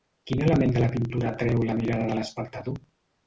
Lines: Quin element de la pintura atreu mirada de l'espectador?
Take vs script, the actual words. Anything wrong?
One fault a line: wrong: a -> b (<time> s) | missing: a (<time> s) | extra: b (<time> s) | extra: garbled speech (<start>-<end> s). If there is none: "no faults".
extra: la (1.7 s)